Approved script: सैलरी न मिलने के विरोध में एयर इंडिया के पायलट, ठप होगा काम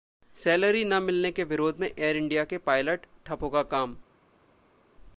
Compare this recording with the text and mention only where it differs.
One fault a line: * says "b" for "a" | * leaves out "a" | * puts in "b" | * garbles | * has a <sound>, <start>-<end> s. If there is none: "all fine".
all fine